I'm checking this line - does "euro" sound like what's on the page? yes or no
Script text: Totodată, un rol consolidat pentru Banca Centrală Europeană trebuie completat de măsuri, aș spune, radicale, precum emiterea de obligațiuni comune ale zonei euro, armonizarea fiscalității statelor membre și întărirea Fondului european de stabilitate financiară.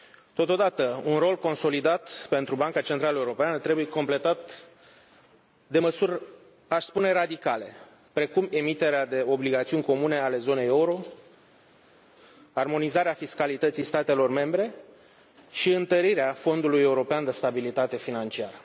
yes